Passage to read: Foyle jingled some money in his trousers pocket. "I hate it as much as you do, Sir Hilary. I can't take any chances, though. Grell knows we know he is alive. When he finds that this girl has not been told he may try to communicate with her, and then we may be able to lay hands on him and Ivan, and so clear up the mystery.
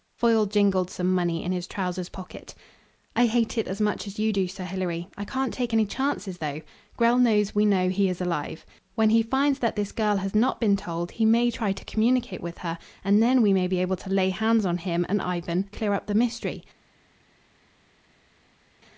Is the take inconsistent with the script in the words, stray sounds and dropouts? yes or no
yes